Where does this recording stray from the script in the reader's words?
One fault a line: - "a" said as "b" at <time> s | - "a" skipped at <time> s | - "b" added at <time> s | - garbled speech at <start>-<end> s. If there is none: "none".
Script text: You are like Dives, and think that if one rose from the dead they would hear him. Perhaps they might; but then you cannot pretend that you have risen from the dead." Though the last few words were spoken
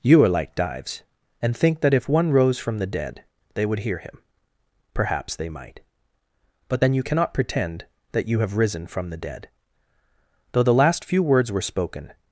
none